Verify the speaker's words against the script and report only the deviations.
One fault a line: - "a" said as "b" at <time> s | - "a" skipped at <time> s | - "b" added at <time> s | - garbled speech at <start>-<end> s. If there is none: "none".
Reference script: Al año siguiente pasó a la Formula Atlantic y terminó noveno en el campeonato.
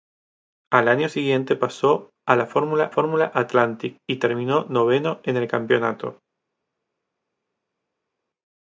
- "Formula" added at 2.9 s